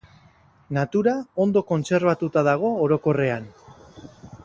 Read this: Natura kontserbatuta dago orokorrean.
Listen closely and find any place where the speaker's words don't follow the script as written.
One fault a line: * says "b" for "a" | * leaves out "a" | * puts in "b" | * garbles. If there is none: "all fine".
* puts in "ondo"